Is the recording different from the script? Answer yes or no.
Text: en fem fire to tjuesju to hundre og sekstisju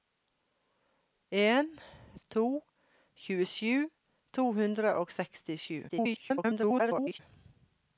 yes